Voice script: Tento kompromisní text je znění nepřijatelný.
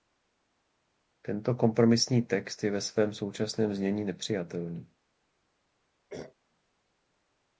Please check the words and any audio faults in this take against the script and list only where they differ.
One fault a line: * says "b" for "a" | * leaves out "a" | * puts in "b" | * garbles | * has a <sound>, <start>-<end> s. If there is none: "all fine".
* puts in "ve svém současném"
* has a throat clearing, 6.1-6.3 s